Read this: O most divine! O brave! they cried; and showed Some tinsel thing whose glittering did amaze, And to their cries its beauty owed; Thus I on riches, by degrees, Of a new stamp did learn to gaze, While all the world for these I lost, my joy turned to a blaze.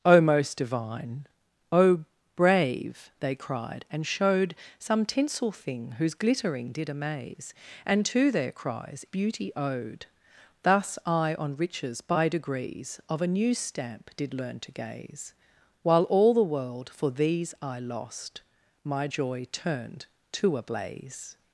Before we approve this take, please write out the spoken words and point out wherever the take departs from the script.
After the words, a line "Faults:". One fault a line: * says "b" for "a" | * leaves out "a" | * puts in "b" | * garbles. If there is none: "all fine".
O most divine! O brave! they cried; and showed Some tinsel thing whose glittering did amaze, And to their cries beauty owed; Thus I on riches, by degrees, Of a new stamp did learn to gaze, While all the world for these I lost, my joy turned to a blaze.
Faults:
* leaves out "its"